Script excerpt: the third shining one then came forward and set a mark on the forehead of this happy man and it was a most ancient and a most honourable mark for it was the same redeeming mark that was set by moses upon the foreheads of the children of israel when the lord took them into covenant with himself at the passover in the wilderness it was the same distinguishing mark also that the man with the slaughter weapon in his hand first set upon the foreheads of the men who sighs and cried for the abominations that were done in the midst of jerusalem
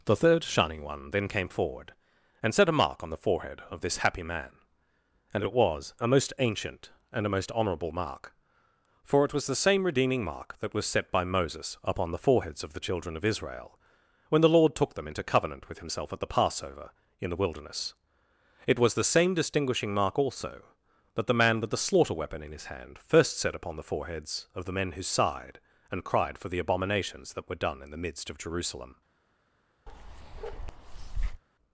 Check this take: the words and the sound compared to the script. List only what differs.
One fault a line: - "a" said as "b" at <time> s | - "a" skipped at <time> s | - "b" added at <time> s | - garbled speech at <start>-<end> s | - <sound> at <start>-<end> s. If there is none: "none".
- "sighs" said as "sighed" at 25.0 s
- bark at 29.9-31.4 s